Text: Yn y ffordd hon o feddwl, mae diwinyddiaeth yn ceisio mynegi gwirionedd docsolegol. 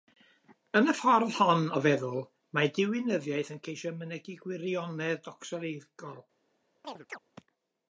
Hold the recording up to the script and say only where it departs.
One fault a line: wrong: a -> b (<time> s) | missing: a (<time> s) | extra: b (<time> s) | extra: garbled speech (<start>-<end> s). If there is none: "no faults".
no faults